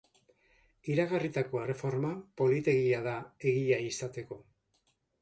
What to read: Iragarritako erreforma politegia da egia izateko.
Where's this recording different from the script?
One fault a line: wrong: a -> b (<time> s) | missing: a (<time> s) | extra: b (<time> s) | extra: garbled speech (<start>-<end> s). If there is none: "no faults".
no faults